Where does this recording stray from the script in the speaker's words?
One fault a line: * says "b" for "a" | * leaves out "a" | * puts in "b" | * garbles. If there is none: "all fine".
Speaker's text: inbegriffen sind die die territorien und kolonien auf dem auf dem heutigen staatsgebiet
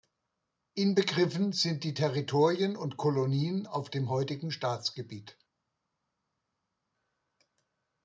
* leaves out "die"
* leaves out "auf dem"